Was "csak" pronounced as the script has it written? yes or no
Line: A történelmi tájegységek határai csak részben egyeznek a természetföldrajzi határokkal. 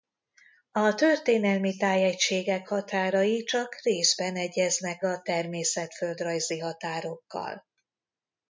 yes